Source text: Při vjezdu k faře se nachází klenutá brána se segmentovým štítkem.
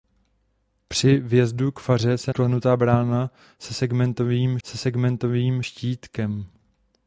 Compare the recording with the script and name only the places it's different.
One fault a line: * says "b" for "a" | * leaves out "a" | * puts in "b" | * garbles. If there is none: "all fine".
* leaves out "nachází"
* puts in "se segmentovým"